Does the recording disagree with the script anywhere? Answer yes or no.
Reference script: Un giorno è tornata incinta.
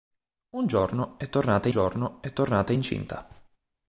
yes